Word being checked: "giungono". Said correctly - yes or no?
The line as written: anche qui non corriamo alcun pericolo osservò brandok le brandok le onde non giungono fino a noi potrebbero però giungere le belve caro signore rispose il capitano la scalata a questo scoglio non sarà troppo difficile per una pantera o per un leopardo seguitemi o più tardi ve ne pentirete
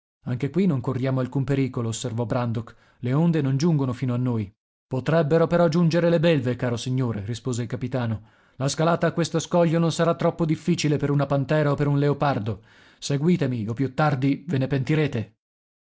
yes